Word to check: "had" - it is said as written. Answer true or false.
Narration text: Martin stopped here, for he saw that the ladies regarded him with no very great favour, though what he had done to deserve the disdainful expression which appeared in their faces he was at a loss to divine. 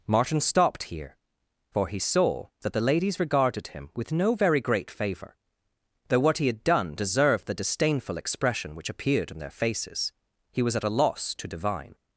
true